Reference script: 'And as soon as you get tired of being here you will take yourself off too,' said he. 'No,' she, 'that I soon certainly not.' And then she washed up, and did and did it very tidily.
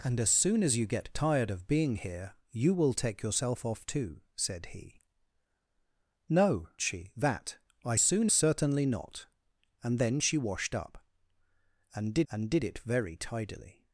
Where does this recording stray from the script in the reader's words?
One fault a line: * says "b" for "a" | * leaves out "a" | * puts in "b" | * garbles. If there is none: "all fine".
all fine